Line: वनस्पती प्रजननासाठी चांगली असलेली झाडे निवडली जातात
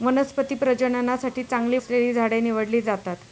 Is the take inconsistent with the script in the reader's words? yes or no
no